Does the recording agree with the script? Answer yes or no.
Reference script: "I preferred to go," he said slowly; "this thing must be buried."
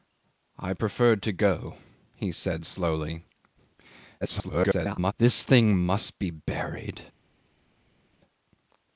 no